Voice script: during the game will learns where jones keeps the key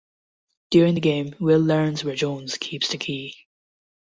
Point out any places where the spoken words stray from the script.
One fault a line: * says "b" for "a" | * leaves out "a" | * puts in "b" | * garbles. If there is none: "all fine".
all fine